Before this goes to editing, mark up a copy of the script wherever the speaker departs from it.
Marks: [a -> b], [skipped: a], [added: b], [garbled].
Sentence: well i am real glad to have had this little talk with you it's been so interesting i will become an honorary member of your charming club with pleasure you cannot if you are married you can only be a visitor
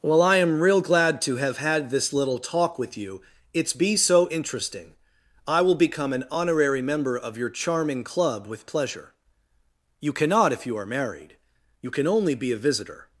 well i am real glad to have had this little talk with you it's [been -> be] so interesting i will become an honorary member of your charming club with pleasure you cannot if you are married you can only be a visitor